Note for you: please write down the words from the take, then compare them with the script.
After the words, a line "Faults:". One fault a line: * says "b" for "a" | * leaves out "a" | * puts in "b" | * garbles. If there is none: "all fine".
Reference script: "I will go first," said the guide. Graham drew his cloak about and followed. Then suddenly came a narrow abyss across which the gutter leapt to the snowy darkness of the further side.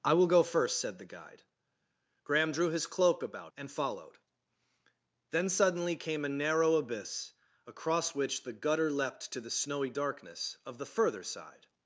"I will go first," said the guide. Graham drew his cloak about and followed. Then suddenly came a narrow abyss across which the gutter leapt to the snowy darkness of the further side.
Faults:
all fine